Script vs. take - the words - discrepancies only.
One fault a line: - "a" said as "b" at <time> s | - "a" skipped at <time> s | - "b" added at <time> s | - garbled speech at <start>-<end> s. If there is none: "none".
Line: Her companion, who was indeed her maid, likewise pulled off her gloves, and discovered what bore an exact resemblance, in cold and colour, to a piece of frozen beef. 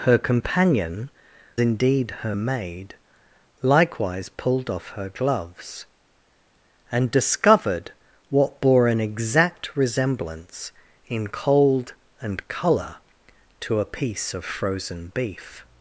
- "who was" skipped at 1.1 s